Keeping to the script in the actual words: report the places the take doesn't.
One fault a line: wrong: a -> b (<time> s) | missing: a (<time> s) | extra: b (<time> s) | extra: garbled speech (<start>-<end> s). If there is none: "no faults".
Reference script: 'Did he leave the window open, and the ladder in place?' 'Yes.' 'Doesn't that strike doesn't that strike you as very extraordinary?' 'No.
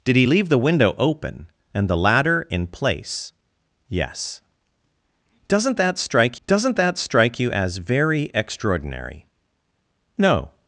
no faults